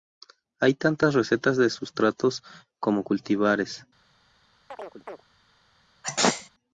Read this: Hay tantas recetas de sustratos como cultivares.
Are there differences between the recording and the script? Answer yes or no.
no